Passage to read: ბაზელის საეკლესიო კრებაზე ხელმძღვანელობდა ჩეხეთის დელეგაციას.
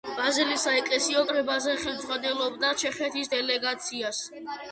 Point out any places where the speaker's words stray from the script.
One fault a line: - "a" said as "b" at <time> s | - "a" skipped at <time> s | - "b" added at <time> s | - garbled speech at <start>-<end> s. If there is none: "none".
none